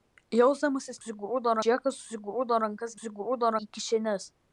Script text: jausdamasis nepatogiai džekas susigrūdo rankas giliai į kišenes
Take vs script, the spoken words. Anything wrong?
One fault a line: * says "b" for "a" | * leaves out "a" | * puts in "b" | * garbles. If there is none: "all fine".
* says "susigrūdo" for "nepatogiai"
* says "susigrūdo" for "giliai"